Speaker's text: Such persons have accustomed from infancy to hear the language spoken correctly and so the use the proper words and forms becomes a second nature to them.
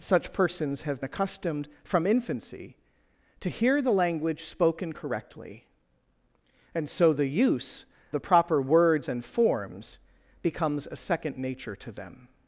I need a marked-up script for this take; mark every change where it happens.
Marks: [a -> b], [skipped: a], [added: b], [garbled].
Such persons have accustomed from infancy to hear the language spoken correctly and so the use the proper words and forms becomes a second nature to them.